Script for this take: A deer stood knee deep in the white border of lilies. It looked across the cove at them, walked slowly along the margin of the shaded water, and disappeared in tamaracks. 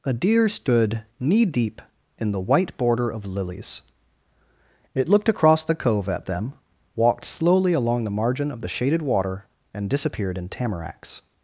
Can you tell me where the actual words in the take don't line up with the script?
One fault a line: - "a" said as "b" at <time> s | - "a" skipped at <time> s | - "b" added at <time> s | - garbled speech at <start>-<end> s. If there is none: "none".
none